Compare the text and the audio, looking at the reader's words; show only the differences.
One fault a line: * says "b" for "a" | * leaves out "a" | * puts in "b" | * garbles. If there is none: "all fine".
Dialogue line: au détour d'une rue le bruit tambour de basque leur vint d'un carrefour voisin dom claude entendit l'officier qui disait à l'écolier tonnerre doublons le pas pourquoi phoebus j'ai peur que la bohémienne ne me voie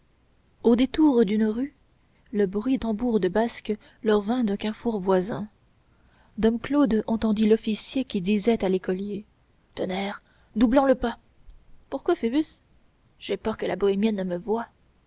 all fine